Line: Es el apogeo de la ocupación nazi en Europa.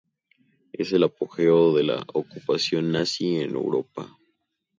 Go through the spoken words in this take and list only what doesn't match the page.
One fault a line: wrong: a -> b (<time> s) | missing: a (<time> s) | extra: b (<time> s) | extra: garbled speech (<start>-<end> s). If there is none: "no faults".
no faults